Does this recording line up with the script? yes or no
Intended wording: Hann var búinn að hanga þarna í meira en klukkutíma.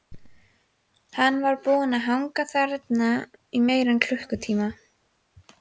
yes